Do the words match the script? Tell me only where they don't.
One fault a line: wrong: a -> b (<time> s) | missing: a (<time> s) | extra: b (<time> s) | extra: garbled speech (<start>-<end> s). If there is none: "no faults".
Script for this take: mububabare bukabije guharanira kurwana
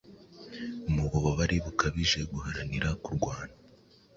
no faults